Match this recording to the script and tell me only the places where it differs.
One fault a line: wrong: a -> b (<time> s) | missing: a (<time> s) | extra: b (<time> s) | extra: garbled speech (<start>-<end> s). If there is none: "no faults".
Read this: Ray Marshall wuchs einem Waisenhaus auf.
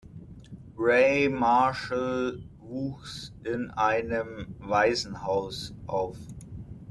extra: in (3.4 s)